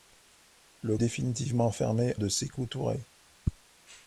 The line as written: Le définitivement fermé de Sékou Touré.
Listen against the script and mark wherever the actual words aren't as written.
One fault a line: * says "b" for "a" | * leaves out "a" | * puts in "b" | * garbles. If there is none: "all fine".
all fine